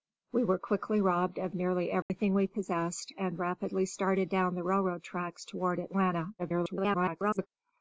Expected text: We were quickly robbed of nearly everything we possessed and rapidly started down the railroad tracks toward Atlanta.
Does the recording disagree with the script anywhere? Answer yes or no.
yes